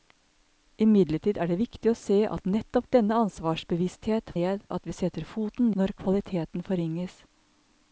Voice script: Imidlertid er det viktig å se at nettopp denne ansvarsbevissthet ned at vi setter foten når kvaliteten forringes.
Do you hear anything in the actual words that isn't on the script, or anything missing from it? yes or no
no